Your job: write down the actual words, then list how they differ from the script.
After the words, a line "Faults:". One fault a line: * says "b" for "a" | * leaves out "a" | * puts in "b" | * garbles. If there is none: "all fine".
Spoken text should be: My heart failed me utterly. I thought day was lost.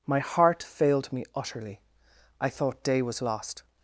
My heart failed me utterly. I thought day was lost.
Faults:
all fine